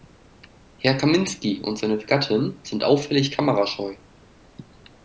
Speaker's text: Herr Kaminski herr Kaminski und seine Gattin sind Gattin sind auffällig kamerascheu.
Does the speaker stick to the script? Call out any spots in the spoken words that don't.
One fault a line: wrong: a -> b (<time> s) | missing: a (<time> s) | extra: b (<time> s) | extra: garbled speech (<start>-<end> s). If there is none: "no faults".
missing: herr Kaminski (1.6 s)
missing: Gattin sind (2.9 s)